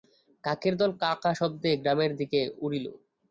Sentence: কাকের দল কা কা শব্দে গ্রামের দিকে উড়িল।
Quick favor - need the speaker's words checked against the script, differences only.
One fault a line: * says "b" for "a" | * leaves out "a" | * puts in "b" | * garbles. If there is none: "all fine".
all fine